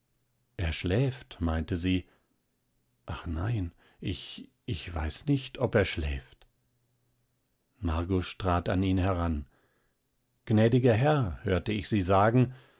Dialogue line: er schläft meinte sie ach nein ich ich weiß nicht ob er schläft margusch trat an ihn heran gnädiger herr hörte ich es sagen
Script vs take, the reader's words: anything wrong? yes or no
yes